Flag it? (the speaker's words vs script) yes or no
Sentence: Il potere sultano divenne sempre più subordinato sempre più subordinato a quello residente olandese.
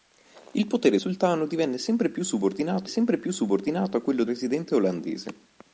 no